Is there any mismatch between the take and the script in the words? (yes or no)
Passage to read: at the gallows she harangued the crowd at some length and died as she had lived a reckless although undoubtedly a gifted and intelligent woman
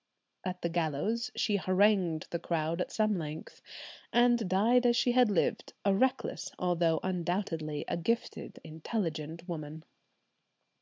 yes